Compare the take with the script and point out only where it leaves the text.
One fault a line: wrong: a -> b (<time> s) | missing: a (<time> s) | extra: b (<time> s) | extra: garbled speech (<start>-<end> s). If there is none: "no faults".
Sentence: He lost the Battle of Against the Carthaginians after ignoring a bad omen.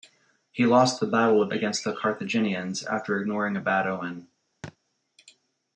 no faults